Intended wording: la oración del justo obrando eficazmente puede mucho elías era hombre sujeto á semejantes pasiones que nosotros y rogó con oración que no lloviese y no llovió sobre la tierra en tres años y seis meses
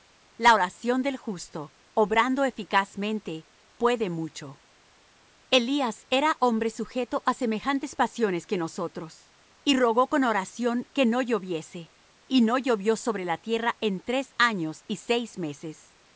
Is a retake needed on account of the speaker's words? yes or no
no